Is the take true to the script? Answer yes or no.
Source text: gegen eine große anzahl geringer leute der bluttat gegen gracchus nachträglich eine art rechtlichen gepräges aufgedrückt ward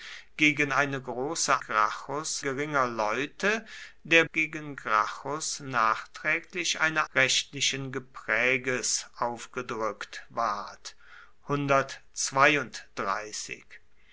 no